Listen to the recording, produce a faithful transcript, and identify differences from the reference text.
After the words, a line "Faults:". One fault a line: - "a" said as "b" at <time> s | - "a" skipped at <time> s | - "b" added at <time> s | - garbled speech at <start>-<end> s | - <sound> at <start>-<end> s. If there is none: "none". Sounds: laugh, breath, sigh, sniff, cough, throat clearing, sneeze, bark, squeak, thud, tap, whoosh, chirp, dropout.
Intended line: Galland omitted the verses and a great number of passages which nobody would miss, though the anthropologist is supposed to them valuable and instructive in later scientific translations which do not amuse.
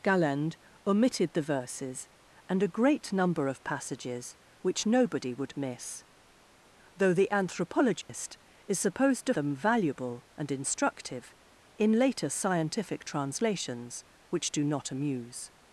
Galland omitted the verses and a great number of passages which nobody would miss, though the anthropologist is supposed to them valuable and instructive in later scientific translations which do not amuse.
Faults:
- dropout at 8.0-8.1 s